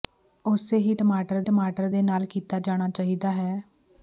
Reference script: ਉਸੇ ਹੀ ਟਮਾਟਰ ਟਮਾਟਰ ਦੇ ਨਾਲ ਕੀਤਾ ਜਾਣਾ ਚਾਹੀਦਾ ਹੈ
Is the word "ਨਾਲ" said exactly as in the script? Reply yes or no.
yes